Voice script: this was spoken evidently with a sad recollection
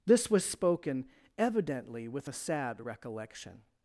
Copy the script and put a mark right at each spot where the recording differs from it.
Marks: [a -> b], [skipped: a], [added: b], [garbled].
this was spoken evidently with a sad recollection